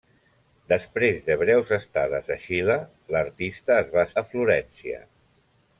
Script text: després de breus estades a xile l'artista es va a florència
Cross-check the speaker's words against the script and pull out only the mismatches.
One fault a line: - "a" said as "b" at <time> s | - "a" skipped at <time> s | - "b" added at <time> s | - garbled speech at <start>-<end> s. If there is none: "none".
none